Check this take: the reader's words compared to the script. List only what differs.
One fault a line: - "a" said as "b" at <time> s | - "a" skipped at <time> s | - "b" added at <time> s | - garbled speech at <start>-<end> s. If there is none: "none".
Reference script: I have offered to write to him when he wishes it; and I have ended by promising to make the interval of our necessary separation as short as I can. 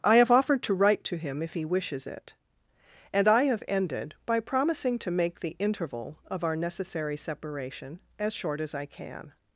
- "when" said as "if" at 1.4 s